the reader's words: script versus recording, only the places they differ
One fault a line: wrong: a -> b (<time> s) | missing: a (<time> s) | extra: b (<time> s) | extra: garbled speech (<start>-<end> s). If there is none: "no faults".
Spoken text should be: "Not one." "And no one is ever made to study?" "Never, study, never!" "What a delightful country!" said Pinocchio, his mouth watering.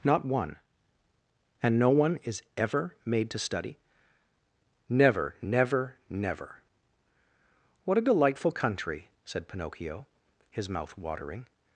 wrong: study -> never (5.4 s)